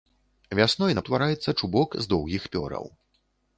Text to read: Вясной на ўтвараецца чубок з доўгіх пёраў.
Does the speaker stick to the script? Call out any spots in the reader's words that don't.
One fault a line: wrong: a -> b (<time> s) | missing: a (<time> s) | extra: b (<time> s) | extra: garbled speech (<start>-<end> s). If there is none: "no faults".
no faults